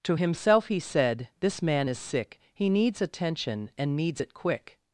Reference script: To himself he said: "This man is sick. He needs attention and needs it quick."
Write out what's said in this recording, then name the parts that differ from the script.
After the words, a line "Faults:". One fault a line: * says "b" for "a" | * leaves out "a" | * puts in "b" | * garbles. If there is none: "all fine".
To himself he said: "This man is sick. He needs attention and needs it quick."
Faults:
all fine